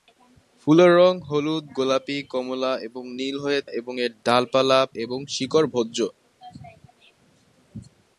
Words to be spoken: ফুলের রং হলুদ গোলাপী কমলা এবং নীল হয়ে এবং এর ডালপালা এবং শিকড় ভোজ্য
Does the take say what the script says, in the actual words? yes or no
yes